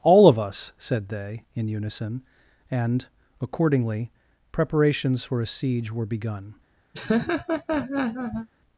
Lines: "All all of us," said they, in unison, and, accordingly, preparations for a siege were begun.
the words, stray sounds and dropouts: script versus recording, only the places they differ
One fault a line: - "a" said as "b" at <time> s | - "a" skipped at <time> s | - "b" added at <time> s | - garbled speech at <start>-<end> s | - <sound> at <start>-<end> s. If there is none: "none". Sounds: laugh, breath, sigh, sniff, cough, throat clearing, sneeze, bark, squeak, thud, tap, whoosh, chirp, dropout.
- "all" skipped at 0.3 s
- laugh at 6.9-8.5 s